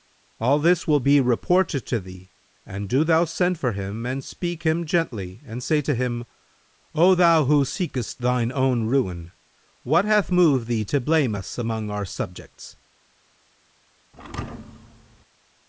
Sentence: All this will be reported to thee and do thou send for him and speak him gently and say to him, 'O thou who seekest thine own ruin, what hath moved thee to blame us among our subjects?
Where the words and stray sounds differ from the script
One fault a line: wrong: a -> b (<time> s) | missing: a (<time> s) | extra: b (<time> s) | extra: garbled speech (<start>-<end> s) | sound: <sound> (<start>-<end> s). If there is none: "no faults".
sound: thud (14.1-15.3 s)